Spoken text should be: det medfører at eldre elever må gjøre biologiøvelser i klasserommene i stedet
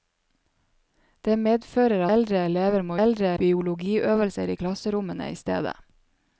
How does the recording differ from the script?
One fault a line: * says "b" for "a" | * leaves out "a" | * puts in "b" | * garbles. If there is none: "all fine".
* leaves out "at"
* says "eldre" for "gjøre"